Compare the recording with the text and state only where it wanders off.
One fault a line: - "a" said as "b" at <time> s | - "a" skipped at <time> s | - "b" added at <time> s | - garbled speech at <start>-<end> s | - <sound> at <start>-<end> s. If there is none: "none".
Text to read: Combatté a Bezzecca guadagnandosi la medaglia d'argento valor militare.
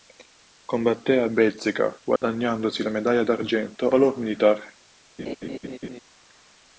- dropout at 2.2-2.2 s
- laugh at 5.2-6.0 s